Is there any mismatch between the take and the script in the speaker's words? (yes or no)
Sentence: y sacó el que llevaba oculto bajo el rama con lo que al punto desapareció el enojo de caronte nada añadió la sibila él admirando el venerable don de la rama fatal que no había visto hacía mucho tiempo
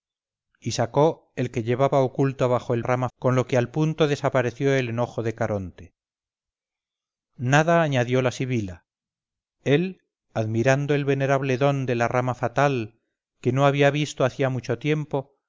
no